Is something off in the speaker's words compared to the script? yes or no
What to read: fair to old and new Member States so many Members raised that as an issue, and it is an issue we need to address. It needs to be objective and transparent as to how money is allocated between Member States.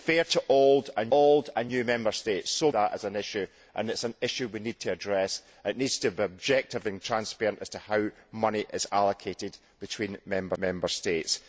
yes